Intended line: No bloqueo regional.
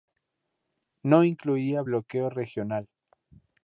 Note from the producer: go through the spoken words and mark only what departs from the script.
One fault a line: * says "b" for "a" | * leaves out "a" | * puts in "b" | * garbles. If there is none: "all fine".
* puts in "incluía"